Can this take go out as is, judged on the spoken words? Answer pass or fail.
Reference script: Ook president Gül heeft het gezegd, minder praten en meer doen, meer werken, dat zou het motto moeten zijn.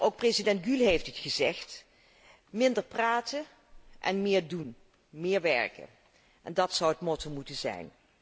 pass